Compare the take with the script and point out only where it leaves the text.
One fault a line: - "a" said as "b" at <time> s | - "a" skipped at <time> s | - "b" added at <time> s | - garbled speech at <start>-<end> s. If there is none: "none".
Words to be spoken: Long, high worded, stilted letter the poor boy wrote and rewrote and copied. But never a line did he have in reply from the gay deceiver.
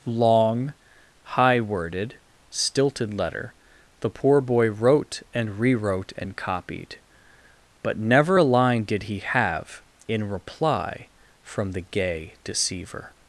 none